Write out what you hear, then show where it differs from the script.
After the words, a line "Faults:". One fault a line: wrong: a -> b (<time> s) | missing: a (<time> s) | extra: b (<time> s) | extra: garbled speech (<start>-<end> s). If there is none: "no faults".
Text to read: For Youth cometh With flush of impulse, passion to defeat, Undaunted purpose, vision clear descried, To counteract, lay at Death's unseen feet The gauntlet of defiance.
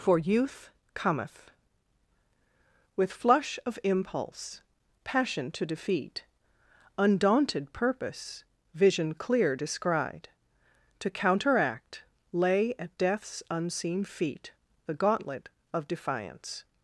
For Youth cometh With flush of impulse, passion to defeat, Undaunted purpose, vision clear descried, To counteract, lay at Death's unseen feet The gauntlet of defiance.
Faults:
no faults